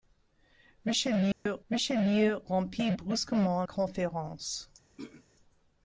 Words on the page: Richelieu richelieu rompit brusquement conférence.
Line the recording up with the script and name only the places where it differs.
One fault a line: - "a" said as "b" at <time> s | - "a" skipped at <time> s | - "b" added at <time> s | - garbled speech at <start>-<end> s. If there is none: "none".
none